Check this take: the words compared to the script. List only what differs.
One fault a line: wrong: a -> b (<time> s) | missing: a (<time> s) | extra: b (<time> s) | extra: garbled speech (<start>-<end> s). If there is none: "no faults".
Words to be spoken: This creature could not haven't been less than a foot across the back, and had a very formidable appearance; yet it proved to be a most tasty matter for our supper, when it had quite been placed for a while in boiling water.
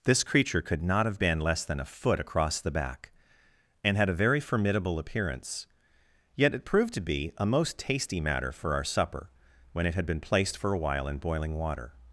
wrong: haven't -> have (1.1 s)
missing: quite (10.0 s)